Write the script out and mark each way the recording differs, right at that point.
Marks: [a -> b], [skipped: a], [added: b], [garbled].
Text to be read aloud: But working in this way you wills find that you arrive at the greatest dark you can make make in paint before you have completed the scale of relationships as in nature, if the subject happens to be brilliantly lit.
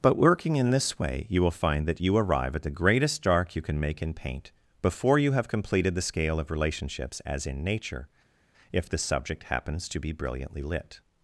But working in this way you [wills -> will] find that you arrive at the greatest dark you can make [skipped: make] in paint before you have completed the scale of relationships as in nature, if the subject happens to be brilliantly lit.